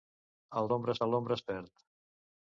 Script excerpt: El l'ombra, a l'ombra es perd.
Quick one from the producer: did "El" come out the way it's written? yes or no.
yes